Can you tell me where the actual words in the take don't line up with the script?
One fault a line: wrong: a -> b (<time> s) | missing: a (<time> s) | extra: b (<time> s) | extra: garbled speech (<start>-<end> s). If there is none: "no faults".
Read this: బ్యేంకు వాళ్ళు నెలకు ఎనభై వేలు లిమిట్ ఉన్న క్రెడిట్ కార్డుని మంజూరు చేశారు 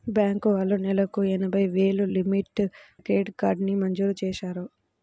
missing: ఉన్న (2.6 s)